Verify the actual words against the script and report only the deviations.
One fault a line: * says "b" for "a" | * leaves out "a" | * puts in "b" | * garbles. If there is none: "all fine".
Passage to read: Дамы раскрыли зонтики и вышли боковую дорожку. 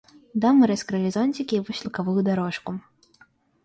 all fine